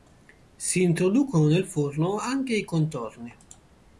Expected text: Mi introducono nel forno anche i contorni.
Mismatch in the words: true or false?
true